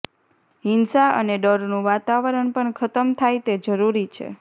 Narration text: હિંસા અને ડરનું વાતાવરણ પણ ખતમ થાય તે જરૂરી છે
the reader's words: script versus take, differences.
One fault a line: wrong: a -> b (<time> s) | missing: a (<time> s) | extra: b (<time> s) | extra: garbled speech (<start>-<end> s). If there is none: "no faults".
no faults